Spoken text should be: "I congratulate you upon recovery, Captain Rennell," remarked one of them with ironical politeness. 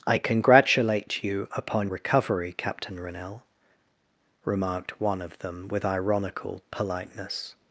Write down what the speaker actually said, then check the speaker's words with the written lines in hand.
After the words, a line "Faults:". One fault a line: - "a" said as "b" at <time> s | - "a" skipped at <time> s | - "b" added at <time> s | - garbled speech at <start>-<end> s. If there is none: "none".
"I congratulate you upon recovery, Captain Rennell," remarked one of them with ironical politeness.
Faults:
none